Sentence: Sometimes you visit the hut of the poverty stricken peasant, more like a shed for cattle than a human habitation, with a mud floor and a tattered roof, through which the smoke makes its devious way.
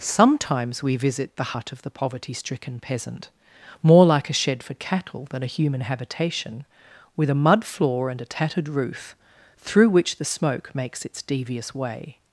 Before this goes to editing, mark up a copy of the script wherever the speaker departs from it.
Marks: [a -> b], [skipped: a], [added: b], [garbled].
Sometimes [you -> we] visit the hut of the poverty stricken peasant, more like a shed for cattle than a human habitation, with a mud floor and a tattered roof, through which the smoke makes its devious way.